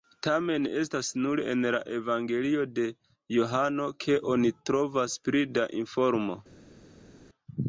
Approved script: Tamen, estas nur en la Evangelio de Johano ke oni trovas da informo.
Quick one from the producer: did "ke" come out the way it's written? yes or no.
yes